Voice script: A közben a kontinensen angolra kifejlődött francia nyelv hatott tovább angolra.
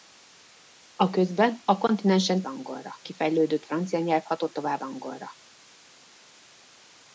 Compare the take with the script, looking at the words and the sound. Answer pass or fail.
pass